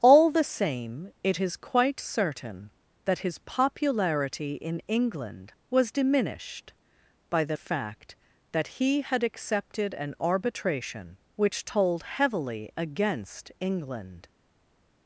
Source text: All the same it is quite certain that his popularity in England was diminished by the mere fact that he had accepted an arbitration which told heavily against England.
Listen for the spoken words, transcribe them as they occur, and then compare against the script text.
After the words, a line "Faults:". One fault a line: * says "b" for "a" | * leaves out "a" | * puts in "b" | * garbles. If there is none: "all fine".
All the same it is quite certain that his popularity in England was diminished by the fact that he had accepted an arbitration which told heavily against England.
Faults:
* leaves out "mere"